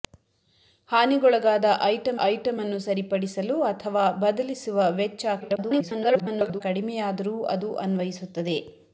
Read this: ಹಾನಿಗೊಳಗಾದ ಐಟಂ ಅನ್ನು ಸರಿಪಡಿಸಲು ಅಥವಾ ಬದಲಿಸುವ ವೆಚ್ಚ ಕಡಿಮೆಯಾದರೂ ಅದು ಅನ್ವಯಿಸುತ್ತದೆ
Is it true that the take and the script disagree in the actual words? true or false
true